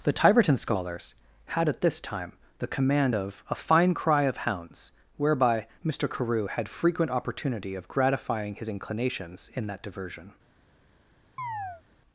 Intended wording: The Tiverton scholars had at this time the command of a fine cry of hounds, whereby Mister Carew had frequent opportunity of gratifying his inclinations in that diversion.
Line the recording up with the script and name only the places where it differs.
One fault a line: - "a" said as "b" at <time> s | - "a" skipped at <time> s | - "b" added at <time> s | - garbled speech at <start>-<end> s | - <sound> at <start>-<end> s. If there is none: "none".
- chirp at 11.4-11.8 s